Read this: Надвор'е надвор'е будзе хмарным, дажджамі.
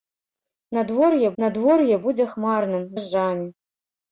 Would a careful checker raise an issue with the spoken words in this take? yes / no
no